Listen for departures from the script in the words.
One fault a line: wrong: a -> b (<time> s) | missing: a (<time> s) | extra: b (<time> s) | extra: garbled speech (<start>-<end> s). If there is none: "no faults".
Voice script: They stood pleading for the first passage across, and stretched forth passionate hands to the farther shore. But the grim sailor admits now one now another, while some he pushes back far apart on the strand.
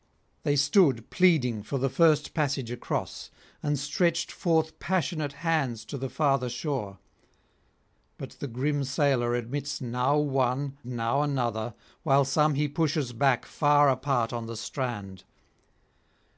no faults